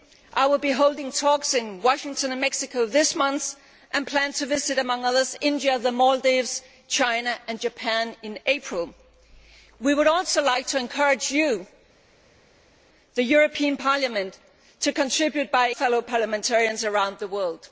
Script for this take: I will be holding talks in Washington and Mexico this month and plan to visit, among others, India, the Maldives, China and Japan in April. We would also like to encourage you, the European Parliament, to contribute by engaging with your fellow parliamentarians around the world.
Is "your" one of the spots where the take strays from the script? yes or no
yes